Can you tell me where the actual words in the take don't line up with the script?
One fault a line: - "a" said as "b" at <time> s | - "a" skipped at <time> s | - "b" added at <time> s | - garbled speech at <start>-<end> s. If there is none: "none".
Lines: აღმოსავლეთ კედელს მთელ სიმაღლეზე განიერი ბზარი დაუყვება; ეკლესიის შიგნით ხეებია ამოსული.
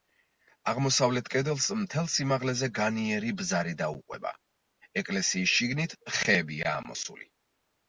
none